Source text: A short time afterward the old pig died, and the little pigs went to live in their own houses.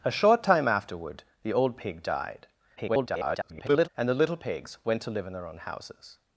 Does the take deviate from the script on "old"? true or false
false